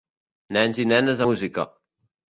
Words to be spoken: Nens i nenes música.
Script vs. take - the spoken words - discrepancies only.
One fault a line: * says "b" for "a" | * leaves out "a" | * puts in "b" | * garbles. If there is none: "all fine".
all fine